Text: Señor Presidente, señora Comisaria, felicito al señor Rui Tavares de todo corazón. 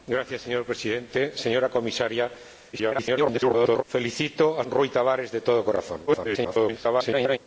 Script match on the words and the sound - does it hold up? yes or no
no